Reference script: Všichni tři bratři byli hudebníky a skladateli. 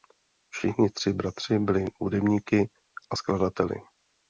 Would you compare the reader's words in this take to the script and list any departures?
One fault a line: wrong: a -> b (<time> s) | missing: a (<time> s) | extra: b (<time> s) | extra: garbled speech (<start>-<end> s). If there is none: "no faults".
no faults